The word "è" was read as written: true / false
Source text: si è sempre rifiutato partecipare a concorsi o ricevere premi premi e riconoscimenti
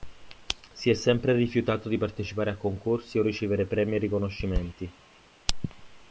true